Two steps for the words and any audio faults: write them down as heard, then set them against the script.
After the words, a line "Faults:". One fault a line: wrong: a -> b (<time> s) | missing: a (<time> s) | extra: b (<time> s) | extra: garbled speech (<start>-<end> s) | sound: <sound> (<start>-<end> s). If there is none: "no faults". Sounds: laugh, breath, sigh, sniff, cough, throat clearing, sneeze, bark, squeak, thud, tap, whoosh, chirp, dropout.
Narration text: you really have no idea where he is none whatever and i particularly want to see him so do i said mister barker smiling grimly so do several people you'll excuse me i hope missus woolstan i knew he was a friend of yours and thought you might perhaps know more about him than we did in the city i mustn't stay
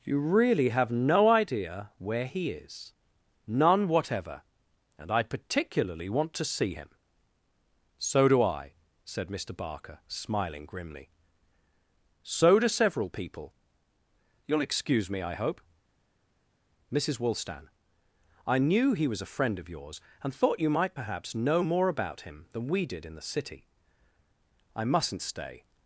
you really have no idea where he is none whatever and i particularly want to see him so do i said mister barker smiling grimly so do several people you'll excuse me i hope missus woolstan i knew he was a friend of yours and thought you might perhaps know more about him than we did in the city i mustn't stay
Faults:
no faults